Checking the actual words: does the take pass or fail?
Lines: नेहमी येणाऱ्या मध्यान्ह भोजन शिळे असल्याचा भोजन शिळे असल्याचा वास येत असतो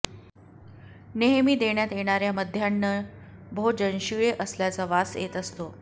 fail